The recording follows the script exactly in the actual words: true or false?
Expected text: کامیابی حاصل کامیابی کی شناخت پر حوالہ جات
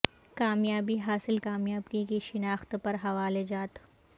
true